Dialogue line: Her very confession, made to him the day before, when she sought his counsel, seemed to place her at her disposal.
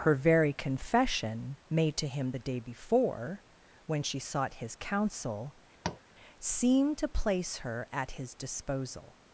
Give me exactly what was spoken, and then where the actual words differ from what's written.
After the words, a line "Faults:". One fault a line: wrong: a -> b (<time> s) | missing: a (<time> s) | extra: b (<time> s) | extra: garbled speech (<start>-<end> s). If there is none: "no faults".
Her very confession, made to him the day before, when she sought his counsel, seemed to place her at his disposal.
Faults:
wrong: her -> his (8.1 s)